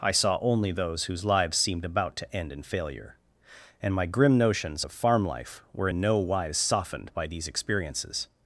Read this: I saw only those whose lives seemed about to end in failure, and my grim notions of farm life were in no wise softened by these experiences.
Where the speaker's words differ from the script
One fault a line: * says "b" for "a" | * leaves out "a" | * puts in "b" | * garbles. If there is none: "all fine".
all fine